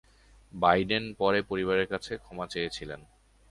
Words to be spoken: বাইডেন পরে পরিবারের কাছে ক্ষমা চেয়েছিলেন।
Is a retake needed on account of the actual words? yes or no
no